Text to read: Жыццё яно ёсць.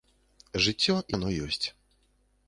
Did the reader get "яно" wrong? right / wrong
right